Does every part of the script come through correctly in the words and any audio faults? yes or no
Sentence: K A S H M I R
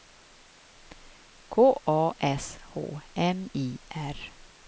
yes